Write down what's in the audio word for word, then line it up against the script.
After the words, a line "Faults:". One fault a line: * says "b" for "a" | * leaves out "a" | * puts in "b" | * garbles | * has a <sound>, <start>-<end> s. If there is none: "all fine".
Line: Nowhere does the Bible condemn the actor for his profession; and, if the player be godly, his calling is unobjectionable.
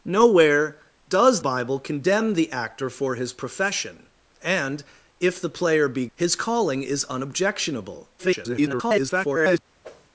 Nowhere does Bible condemn the actor for his profession; and, if the player be his calling is unobjectionable. [garbled]
Faults:
* leaves out "the"
* leaves out "godly"
* garbles
* has a whoosh, 9.8-10.1 s